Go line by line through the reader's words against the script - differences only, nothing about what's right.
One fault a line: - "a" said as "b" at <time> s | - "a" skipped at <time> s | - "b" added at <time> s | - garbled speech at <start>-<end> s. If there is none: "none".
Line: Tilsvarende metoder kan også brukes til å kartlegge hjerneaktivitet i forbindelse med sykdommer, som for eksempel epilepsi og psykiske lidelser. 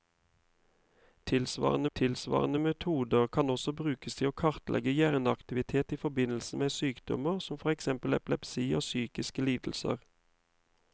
- "tilsvarende" added at 1.9 s